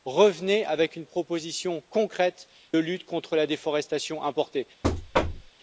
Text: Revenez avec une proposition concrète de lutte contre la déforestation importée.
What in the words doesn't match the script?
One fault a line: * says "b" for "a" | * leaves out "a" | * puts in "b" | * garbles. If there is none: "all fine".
* leaves out "de"